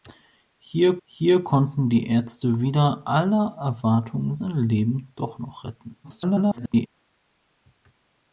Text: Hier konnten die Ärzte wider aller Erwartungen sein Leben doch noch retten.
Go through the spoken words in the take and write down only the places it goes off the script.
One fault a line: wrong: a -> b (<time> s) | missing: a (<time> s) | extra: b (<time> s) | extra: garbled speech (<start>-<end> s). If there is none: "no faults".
extra: hier (1.0 s)
extra: garbled speech (6.0-6.9 s)